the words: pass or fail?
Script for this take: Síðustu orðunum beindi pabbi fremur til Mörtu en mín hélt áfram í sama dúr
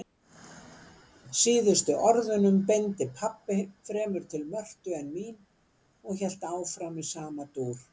fail